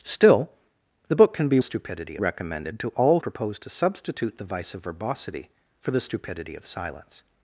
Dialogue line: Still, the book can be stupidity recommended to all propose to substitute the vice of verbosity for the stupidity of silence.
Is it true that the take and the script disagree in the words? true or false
false